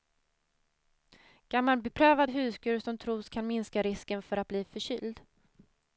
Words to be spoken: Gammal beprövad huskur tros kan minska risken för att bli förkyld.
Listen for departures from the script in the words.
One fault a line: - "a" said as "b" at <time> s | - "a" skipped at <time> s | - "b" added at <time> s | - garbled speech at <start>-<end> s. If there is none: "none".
- "som" added at 2.8 s